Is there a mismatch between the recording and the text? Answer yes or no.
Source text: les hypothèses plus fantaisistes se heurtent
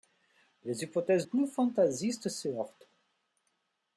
no